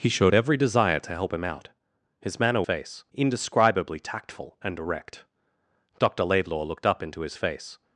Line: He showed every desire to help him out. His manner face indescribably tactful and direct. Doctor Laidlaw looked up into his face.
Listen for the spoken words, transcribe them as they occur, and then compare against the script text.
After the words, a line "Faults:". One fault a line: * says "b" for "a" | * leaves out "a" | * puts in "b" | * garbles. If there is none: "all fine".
He showed every desire to help him out. His manner face indescribably tactful and direct. Doctor Laidlaw looked up into his face.
Faults:
all fine